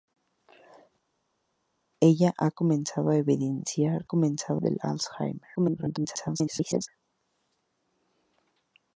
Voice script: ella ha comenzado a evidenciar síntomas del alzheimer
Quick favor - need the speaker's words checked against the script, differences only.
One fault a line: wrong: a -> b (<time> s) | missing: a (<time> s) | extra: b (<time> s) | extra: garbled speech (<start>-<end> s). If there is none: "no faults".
wrong: síntomas -> comenzado (4.0 s)
extra: garbled speech (5.6-6.9 s)